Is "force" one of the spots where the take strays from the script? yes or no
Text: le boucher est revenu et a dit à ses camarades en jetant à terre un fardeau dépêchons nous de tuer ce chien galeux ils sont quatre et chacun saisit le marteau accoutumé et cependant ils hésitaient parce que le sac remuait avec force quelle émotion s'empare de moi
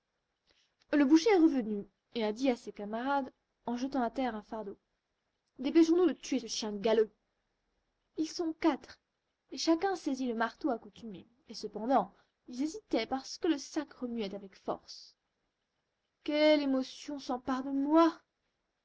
no